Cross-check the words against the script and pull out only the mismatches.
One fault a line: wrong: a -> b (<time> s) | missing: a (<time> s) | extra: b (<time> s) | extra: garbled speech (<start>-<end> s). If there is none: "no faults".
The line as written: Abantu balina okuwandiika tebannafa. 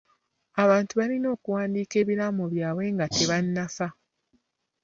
extra: ebiraamo byabwe nga (2.0 s)